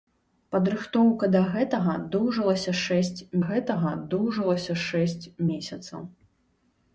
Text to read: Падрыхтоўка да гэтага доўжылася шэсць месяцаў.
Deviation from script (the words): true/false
true